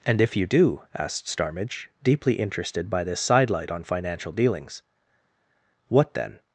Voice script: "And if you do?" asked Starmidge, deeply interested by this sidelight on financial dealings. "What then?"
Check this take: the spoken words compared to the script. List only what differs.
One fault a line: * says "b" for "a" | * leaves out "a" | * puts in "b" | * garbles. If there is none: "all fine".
all fine